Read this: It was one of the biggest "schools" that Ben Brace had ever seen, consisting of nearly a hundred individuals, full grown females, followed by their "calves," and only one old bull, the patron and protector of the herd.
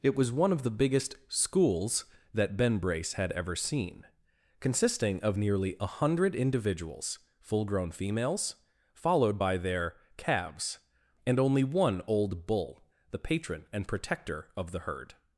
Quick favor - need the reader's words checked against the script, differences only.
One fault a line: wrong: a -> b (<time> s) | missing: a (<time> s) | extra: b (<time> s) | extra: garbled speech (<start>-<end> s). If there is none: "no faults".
no faults